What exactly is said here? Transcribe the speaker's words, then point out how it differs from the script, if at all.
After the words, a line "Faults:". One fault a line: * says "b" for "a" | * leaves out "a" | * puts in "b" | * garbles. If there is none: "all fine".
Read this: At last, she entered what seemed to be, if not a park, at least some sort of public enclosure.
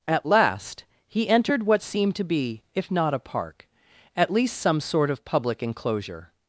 At last, he entered what seemed to be, if not a park, at least some sort of public enclosure.
Faults:
* says "he" for "she"